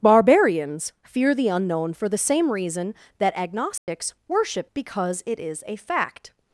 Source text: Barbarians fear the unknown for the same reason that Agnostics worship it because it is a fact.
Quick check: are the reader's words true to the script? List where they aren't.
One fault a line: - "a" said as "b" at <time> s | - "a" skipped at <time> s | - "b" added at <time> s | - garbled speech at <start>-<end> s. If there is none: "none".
- "it" skipped at 4.7 s